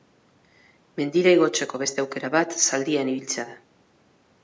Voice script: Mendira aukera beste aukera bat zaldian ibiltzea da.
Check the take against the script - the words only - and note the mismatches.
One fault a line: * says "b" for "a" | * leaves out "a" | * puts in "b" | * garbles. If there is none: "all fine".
* says "igotzeko" for "aukera"